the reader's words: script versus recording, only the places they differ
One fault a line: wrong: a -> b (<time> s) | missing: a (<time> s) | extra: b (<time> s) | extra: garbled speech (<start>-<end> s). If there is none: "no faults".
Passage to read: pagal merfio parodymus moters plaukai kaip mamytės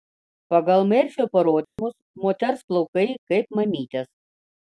no faults